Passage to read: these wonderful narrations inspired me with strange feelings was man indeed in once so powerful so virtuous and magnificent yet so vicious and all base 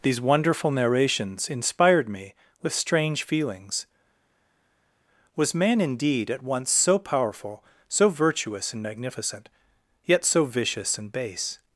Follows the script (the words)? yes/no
no